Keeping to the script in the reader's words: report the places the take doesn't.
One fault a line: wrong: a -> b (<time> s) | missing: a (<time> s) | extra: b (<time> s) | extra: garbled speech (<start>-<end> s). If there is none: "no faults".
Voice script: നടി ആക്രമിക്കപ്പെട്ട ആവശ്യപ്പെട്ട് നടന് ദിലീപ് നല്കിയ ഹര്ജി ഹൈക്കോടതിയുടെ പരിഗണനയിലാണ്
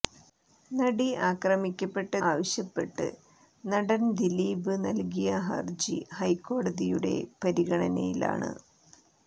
no faults